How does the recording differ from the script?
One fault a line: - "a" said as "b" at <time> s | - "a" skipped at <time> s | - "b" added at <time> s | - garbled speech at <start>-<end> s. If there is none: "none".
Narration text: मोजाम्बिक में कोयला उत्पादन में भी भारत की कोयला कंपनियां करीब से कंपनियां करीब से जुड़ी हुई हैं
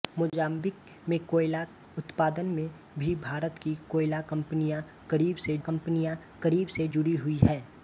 none